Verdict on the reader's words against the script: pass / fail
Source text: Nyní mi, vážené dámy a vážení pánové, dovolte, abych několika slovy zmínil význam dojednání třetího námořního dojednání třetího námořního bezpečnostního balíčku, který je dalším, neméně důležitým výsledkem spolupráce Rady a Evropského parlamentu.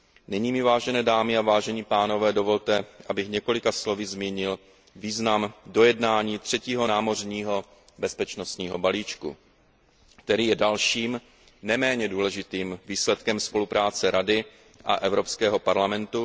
fail